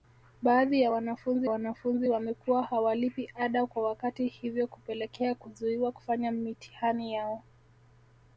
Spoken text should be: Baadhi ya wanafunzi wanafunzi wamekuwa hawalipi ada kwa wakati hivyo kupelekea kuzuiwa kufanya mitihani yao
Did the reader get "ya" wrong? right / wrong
right